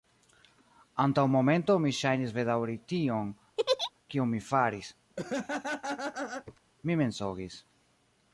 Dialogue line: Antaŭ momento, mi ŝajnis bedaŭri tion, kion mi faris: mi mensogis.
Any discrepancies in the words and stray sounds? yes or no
yes